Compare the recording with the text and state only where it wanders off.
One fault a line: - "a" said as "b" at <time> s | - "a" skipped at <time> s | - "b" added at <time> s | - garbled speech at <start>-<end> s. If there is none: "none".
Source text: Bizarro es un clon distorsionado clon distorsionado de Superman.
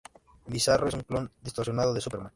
- "clon distorsionado" skipped at 1.9 s